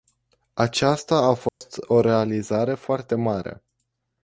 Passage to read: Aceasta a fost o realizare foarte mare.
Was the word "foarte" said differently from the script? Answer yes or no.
no